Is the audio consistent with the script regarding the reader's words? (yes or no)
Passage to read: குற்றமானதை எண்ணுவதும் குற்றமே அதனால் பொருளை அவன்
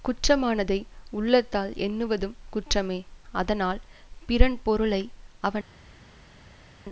no